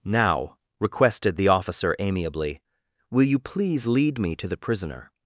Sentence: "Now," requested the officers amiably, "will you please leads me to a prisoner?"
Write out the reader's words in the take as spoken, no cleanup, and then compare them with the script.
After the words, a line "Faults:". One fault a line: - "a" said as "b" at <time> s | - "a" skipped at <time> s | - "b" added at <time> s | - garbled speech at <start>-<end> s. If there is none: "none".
"Now," requested the officer amiably, "will you please lead me to the prisoner?"
Faults:
- "officers" said as "officer" at 1.5 s
- "leads" said as "lead" at 3.9 s
- "a" said as "the" at 4.5 s